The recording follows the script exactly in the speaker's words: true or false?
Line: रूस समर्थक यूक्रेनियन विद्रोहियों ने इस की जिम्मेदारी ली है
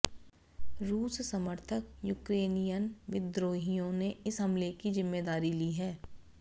false